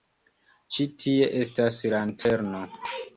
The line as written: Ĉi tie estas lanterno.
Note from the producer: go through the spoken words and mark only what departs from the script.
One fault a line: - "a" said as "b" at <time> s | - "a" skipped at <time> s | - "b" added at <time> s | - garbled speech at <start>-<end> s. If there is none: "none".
none